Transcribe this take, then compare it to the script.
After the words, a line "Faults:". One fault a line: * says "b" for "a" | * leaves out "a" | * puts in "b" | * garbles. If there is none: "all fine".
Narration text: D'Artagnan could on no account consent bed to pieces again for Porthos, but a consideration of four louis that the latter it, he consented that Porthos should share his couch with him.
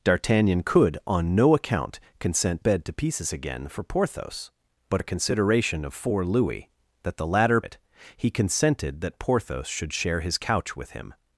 D'Artagnan could on no account consent bed to pieces again for Porthos, but a consideration of four louis that the latter it, he consented that Porthos should share his couch with him.
Faults:
all fine